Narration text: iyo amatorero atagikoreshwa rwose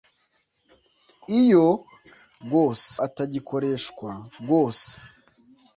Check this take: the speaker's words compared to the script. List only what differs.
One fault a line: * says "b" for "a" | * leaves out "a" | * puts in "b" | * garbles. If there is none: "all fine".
* says "rwose" for "amatorero"